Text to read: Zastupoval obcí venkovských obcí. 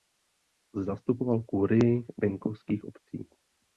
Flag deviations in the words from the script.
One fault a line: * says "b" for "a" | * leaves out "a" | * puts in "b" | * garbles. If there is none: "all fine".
* says "kurii" for "obcí"